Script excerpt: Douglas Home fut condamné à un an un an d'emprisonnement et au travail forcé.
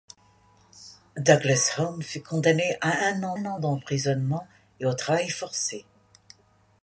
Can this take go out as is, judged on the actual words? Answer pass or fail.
pass